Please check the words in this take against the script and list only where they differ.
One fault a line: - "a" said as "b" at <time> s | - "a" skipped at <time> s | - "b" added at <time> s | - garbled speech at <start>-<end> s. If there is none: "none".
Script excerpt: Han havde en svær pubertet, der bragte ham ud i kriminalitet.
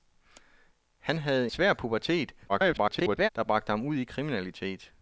- "en" skipped at 1.5 s
- garbled speech at 2.5-3.3 s